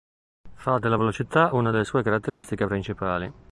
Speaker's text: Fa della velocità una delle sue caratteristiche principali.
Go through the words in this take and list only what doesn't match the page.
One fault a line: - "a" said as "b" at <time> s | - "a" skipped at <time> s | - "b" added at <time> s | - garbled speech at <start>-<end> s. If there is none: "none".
none